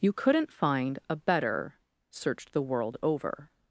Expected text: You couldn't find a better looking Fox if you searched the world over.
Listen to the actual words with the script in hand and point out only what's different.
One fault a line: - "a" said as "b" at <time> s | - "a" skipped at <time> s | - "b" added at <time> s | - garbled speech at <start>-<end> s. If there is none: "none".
- "looking Fox if you" skipped at 1.8 s